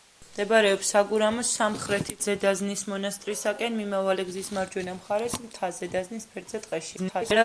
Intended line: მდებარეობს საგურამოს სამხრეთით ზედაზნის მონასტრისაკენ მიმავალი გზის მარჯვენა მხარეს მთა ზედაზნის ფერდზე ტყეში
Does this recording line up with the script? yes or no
no